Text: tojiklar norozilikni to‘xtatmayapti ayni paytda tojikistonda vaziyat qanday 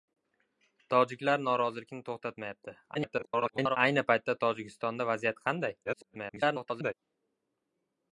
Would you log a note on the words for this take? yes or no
yes